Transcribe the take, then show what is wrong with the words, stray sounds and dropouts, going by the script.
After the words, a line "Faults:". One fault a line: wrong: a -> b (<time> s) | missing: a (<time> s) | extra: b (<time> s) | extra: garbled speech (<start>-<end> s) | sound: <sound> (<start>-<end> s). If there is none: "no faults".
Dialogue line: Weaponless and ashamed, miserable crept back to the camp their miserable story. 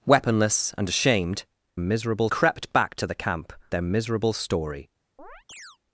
Weaponless and ashamed, miserable crept back to the camp their miserable story.
Faults:
sound: chirp (5.2-5.8 s)